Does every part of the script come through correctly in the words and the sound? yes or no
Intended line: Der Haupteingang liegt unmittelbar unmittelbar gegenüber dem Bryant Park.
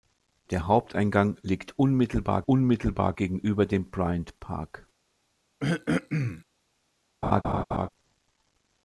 no